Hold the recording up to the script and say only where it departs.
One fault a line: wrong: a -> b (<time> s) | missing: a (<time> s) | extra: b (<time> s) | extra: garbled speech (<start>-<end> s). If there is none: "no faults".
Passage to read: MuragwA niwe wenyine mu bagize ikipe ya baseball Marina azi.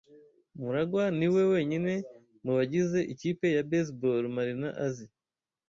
no faults